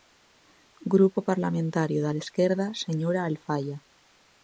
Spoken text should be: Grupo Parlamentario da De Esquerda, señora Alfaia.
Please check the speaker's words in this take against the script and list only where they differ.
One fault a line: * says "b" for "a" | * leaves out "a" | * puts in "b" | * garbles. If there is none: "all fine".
all fine